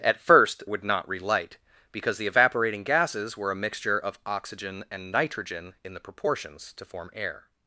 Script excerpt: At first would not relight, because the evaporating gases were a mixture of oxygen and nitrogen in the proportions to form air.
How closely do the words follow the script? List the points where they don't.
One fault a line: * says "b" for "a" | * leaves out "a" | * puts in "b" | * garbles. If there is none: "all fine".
all fine